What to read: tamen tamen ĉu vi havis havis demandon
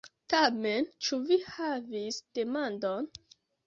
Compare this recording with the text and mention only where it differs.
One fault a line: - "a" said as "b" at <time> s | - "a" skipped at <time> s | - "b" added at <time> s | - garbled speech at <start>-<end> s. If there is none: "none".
- "tamen" skipped at 0.9 s
- "havis" skipped at 2.2 s